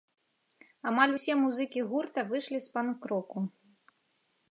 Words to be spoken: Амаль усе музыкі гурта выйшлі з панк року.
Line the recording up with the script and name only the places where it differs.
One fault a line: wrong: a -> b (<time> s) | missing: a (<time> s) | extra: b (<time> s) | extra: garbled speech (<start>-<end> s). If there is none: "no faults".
no faults